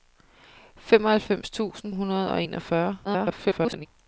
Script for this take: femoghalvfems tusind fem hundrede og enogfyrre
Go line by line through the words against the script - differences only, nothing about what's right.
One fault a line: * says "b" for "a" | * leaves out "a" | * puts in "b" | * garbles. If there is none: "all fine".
* leaves out "fem"
* garbles